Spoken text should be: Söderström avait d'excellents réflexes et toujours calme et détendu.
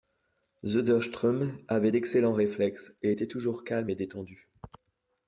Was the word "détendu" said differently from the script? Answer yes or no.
no